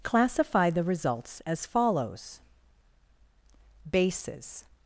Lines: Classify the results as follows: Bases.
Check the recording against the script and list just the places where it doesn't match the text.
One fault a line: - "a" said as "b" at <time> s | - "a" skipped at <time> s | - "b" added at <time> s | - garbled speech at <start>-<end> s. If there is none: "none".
none